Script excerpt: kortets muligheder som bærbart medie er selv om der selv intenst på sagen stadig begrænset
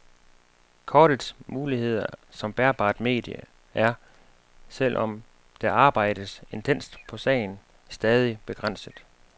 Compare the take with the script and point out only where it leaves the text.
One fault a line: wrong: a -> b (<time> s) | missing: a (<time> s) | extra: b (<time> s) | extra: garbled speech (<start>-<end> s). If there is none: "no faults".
wrong: selv -> arbejdes (5.7 s)